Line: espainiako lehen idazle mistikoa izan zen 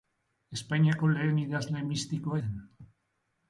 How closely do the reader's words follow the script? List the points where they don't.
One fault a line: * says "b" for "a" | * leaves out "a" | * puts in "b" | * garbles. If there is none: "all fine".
* leaves out "izan"